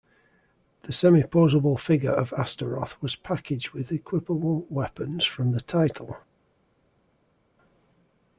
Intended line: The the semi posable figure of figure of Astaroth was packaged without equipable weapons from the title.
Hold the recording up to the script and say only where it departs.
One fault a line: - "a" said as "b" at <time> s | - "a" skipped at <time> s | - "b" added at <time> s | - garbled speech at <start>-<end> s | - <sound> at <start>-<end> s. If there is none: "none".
- "the" skipped at 0.9 s
- "figure of" skipped at 2.3 s
- "without" said as "with" at 3.7 s